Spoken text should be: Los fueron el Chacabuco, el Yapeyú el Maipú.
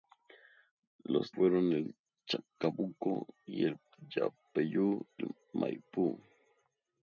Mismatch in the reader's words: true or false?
false